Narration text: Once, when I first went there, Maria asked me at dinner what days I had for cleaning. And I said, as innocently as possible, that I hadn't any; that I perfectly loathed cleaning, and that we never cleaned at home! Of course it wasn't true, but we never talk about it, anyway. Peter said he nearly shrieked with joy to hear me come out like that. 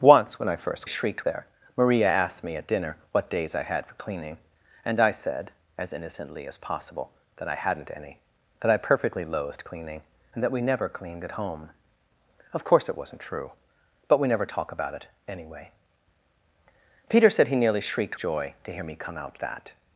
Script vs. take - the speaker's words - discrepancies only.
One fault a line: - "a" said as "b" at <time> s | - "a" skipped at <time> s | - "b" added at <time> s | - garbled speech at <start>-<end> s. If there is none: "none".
- "went" said as "shrieked" at 0.9 s
- "with" skipped at 18.2 s
- "like" skipped at 19.3 s